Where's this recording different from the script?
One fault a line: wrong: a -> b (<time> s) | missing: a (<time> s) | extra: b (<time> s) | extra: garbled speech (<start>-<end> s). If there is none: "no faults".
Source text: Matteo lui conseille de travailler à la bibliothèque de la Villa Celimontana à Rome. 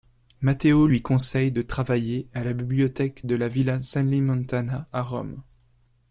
no faults